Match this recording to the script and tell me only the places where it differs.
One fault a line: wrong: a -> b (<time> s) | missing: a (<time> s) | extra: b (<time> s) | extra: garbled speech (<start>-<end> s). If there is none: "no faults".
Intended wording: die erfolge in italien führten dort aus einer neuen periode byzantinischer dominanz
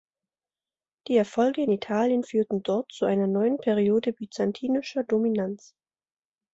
wrong: aus -> zu (2.9 s)